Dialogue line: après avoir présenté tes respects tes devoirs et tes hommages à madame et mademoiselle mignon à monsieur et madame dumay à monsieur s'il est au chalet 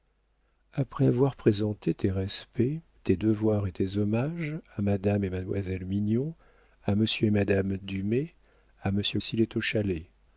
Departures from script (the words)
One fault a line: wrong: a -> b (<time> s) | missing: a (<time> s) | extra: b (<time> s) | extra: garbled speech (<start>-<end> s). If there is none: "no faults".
no faults